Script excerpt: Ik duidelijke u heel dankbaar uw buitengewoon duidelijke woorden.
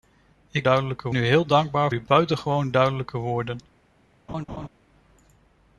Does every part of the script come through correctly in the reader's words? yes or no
yes